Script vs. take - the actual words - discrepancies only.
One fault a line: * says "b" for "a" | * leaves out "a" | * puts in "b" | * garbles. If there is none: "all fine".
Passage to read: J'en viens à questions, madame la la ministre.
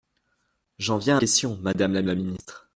all fine